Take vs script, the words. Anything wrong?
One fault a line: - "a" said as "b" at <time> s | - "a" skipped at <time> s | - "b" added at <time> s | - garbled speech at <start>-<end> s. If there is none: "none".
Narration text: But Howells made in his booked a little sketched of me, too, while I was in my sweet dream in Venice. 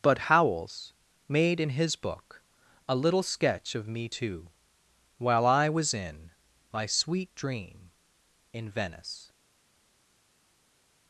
- "booked" said as "book" at 1.9 s
- "sketched" said as "sketch" at 3.2 s